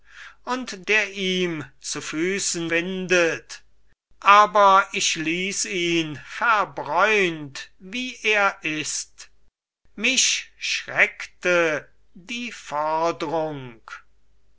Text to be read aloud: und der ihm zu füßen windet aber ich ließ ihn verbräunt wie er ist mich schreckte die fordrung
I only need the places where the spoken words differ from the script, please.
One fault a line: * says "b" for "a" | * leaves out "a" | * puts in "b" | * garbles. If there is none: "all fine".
all fine